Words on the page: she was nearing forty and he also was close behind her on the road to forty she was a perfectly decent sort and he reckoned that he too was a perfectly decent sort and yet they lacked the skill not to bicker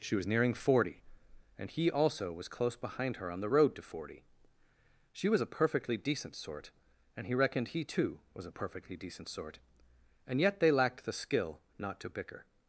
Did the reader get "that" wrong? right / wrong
wrong